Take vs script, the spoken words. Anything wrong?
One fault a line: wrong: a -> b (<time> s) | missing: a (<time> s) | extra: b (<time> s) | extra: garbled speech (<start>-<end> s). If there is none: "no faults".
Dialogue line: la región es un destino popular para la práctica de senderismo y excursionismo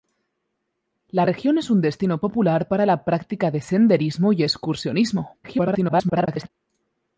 extra: garbled speech (5.4-6.5 s)